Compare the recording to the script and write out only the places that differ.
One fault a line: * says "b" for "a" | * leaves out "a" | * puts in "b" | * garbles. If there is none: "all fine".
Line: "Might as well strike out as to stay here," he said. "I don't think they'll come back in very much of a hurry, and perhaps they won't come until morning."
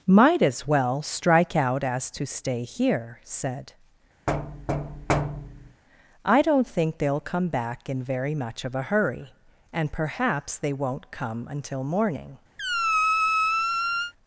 * leaves out "he"